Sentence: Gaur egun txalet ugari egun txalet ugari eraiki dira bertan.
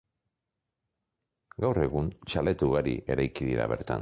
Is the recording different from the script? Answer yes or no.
yes